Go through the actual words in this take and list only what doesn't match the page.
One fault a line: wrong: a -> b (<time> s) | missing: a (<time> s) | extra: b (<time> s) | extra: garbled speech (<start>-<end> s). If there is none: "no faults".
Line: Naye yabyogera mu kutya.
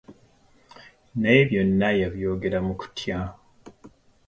extra: byonna (1.5 s)